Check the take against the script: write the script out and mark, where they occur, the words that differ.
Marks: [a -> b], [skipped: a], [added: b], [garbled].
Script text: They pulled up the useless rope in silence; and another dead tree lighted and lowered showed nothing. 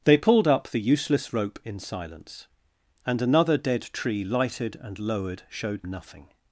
They pulled up the useless rope in silence; and another dead tree lighted and lowered showed nothing.